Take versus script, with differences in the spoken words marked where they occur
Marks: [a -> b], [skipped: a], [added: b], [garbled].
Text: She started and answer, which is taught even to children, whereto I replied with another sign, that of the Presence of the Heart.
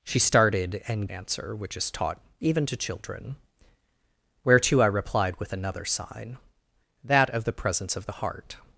She started and answer, which is taught even to children, whereto I replied with another sign, that of the Presence of the Heart.